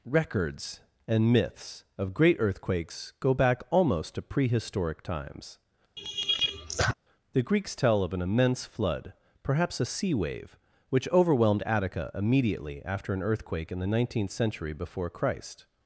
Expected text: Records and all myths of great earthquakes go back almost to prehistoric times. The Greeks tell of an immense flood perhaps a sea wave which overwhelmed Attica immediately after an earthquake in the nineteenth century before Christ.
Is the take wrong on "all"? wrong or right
wrong